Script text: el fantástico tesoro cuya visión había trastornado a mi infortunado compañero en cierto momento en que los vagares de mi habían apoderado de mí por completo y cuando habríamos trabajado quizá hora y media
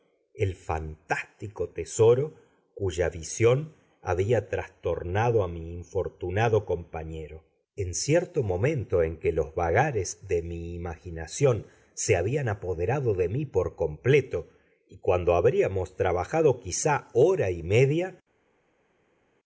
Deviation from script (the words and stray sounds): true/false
true